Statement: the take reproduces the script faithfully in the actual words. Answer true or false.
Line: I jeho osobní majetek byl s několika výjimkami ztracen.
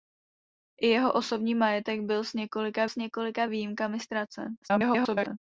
false